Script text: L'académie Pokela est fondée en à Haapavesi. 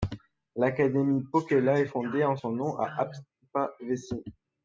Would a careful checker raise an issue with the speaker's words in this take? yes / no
yes